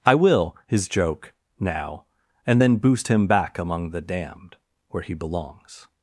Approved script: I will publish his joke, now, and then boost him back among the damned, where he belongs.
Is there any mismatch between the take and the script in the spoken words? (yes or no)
yes